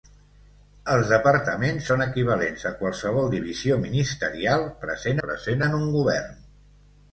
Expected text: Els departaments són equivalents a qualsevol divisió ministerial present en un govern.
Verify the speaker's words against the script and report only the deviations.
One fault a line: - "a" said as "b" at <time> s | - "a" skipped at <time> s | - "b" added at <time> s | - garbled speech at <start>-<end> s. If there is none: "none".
- "present" added at 5.2 s